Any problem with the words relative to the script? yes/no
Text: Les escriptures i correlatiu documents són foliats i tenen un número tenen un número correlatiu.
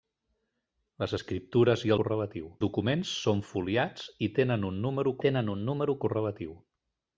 no